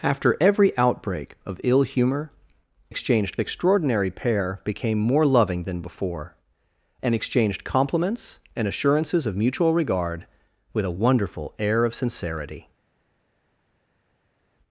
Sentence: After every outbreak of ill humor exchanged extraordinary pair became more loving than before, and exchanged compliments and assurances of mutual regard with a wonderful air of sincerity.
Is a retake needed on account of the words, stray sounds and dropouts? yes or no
no